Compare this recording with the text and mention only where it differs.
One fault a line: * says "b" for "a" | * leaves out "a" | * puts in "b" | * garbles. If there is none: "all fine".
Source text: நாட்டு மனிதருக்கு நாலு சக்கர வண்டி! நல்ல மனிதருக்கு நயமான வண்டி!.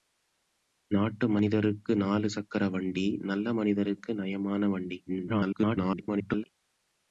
* garbles